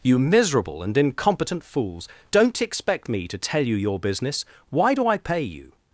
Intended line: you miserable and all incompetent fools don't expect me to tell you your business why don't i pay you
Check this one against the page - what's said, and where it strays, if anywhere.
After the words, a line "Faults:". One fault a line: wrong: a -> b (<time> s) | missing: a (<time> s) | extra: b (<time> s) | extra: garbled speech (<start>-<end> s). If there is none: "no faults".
you miserable and incompetent fools don't expect me to tell you your business why do i pay you
Faults:
missing: all (1.0 s)
wrong: don't -> do (4.9 s)